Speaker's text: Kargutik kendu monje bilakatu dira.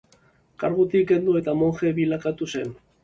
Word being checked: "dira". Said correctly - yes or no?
no